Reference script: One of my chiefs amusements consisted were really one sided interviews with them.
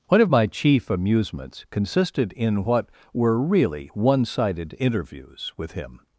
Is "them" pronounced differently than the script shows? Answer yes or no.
yes